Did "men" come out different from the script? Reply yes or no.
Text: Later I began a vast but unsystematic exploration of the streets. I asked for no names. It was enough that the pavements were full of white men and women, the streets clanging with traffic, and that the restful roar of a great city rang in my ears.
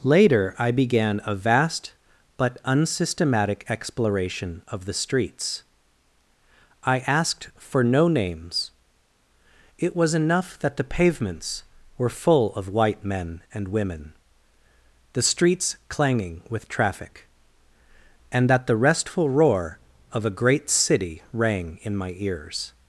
no